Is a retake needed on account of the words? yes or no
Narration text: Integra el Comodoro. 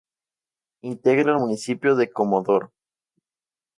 yes